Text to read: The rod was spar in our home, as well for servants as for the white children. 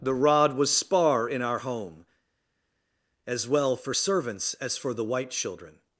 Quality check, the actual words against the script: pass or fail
pass